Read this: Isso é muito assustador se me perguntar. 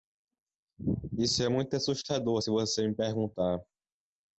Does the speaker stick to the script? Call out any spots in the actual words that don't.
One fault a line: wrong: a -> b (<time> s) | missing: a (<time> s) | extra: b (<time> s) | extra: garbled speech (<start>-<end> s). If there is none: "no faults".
extra: você (2.5 s)